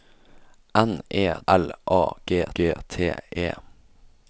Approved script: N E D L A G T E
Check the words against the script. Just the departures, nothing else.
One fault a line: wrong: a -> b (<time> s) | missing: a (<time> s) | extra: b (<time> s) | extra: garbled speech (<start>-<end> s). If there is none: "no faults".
missing: D (1.2 s)
extra: G (2.5 s)